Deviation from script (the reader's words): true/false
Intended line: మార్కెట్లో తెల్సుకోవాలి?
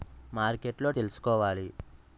false